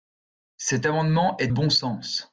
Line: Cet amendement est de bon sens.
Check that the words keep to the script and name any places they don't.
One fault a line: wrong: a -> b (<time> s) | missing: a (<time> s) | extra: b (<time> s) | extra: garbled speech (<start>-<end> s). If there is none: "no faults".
missing: de (1.5 s)